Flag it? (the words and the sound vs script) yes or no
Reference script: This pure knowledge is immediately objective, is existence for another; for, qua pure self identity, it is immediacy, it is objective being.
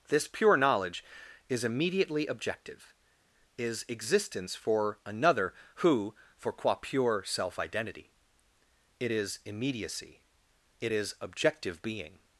yes